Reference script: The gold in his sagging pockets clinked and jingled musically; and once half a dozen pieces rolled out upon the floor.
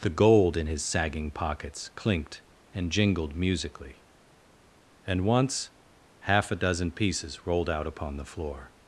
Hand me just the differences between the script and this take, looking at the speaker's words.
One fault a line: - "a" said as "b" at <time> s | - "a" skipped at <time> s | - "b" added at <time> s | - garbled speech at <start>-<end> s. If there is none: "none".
none